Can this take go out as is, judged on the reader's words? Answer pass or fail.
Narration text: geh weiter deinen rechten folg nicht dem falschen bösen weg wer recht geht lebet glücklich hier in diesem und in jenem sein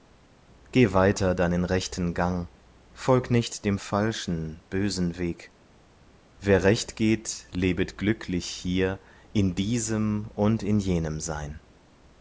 fail